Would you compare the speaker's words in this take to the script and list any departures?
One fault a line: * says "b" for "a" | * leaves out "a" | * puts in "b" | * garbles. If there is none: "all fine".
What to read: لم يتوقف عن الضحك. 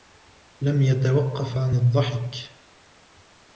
all fine